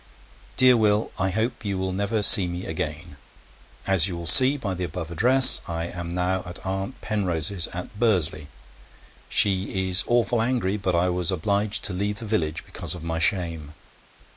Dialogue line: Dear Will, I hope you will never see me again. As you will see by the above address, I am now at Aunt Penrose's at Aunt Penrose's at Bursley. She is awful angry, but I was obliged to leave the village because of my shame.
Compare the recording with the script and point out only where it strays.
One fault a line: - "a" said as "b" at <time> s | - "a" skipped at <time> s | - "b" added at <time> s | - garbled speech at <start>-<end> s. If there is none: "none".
- "Aunt Penrose's at" skipped at 8.0 s